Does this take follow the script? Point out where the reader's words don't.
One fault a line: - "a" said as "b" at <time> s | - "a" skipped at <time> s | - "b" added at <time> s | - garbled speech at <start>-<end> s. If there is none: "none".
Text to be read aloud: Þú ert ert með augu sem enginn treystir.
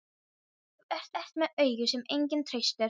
none